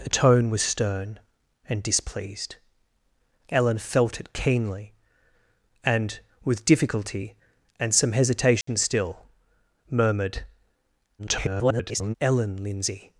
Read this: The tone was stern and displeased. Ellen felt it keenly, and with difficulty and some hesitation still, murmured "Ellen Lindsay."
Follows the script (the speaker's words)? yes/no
no